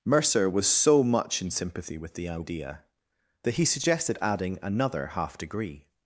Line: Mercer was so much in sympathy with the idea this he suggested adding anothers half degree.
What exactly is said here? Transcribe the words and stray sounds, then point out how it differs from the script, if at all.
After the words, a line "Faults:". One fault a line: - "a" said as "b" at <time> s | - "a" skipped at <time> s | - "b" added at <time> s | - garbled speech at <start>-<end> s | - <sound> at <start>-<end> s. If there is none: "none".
Mercer was so much in sympathy with the idea that he suggested adding another half degree.
Faults:
- "this" said as "that" at 3.4 s
- "anothers" said as "another" at 4.6 s